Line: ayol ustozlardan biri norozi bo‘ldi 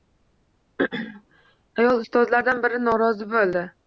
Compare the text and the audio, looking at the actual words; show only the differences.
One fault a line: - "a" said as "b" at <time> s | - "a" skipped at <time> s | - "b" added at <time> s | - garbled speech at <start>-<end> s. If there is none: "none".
none